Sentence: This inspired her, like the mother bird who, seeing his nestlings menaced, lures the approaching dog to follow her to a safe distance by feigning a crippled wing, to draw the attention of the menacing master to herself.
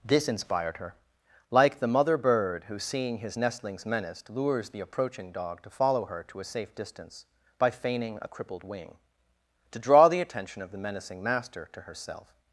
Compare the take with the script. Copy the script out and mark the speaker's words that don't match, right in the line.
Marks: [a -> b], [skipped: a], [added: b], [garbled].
This inspired her, like the mother bird who, seeing his nestlings menaced, lures the approaching dog to follow her to a safe distance by feigning a crippled wing, to draw the attention of the menacing master to herself.